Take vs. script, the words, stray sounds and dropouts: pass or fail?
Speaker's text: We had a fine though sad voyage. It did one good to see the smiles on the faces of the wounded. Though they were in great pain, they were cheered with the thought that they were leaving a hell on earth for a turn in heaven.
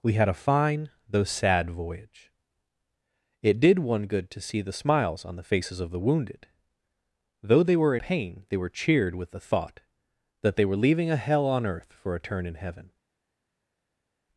fail